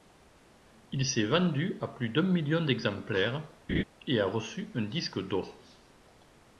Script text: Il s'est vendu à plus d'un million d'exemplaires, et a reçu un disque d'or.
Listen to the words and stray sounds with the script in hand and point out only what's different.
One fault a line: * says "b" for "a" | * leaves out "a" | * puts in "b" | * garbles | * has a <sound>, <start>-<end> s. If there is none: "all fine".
* has a laugh, 3.7-3.8 s